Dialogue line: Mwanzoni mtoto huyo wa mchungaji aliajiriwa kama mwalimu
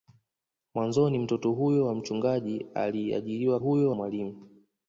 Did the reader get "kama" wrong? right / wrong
wrong